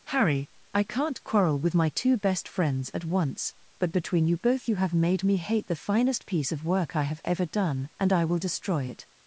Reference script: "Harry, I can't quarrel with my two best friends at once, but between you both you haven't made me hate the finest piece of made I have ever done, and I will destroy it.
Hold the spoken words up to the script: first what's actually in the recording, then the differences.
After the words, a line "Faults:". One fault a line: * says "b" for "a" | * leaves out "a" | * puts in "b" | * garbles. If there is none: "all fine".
"Harry, I can't quarrel with my two best friends at once, but between you both you have made me hate the finest piece of work I have ever done, and I will destroy it.
Faults:
* says "have" for "haven't"
* says "work" for "made"